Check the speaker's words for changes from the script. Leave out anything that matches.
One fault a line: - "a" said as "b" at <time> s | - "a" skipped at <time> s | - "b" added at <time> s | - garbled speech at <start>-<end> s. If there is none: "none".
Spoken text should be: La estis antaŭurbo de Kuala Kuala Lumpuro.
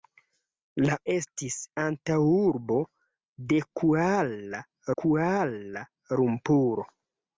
none